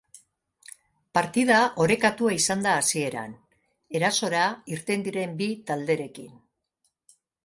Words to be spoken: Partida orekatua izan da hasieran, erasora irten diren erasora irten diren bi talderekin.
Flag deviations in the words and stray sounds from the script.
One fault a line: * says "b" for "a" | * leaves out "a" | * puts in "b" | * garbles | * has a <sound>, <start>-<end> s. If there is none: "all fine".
* leaves out "erasora irten diren"